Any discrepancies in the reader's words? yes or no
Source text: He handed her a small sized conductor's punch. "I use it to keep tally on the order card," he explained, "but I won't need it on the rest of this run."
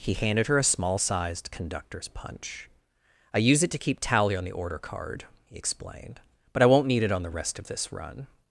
no